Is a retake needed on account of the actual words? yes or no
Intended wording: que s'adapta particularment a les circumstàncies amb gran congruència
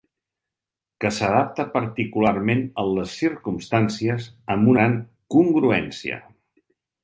no